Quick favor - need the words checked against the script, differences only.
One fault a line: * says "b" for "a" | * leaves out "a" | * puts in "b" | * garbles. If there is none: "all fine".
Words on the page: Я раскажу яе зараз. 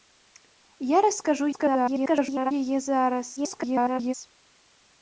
* garbles
* garbles